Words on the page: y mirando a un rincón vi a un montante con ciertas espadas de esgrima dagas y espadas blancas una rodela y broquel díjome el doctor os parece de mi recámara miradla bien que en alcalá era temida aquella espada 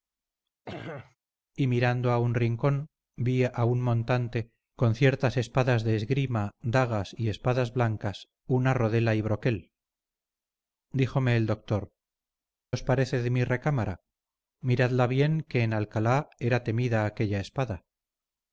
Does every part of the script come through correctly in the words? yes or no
yes